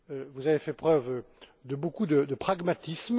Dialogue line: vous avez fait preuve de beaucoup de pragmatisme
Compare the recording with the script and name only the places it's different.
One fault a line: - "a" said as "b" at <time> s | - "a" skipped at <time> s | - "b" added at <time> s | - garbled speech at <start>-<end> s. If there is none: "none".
none